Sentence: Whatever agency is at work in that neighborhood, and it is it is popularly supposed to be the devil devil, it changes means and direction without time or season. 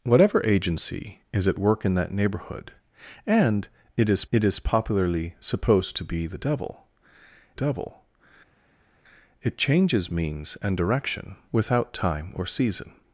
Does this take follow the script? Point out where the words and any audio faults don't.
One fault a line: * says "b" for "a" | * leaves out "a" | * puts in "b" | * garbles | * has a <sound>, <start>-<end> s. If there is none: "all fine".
all fine